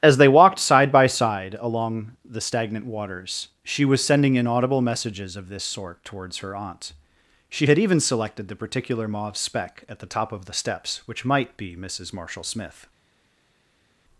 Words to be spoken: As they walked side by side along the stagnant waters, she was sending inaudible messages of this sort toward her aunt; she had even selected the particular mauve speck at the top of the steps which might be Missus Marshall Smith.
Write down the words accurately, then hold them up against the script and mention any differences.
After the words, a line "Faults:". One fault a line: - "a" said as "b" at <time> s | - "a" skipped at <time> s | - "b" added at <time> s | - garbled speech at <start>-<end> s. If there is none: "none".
As they walked side by side along the stagnant waters, she was sending inaudible messages of this sort towards her aunt; she had even selected the particular mauve speck at the top of the steps which might be Missus Marshall Smith.
Faults:
- "toward" said as "towards" at 6.0 s